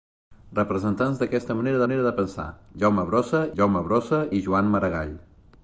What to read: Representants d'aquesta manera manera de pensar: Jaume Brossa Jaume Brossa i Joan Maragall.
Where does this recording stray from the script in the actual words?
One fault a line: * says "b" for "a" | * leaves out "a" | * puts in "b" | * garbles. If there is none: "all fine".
all fine